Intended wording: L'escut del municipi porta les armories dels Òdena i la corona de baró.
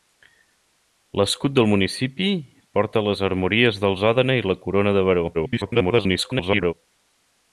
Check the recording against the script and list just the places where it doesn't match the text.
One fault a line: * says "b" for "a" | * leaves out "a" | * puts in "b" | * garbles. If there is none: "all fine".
* garbles